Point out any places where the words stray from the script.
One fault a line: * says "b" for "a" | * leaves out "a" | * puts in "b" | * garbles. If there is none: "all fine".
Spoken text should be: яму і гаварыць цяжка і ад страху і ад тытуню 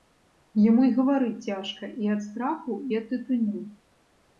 all fine